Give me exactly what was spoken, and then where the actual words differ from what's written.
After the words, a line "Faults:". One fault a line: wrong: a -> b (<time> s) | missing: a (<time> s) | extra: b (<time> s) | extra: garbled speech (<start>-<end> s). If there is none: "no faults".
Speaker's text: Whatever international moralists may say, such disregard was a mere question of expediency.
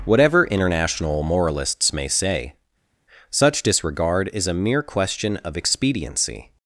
Whatever international moralists may say, such disregard is a mere question of expediency.
Faults:
wrong: was -> is (4.3 s)